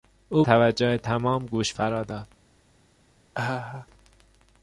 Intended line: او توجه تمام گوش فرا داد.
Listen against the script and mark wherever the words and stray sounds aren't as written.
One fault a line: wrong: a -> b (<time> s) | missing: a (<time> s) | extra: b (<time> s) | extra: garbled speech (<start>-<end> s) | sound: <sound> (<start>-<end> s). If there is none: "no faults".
sound: laugh (3.3-3.9 s)